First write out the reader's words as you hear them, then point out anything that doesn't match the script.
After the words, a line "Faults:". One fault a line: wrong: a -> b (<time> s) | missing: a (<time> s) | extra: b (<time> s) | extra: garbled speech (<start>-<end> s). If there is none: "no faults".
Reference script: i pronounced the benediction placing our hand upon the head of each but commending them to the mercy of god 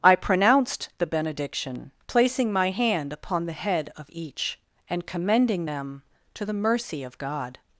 i pronounced the benediction placing my hand upon the head of each and commending them to the mercy of god
Faults:
wrong: our -> my (2.5 s)
wrong: but -> and (4.9 s)